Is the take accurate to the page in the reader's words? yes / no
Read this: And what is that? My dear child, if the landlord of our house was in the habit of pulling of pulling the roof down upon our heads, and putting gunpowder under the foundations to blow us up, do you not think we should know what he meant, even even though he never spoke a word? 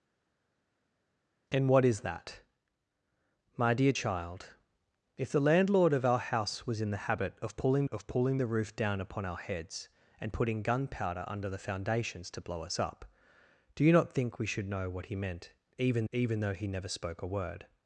yes